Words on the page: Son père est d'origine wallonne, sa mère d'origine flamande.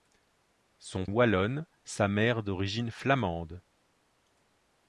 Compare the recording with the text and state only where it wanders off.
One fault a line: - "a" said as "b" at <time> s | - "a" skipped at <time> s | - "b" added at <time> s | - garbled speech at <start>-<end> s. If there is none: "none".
- "père est d'origine" skipped at 1.1 s